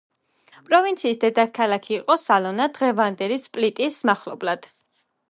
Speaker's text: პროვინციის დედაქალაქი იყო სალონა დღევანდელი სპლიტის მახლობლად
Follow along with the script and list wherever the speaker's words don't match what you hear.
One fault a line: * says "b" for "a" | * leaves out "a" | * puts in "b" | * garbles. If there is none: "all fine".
all fine